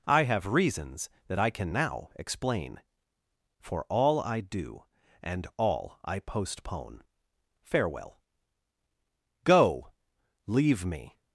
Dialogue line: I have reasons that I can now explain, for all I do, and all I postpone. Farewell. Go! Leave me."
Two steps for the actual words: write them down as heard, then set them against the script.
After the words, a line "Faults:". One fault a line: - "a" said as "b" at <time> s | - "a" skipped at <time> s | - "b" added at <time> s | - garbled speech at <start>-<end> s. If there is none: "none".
I have reasons that I can now explain, for all I do, and all I postpone. Farewell. Go! Leave me."
Faults:
none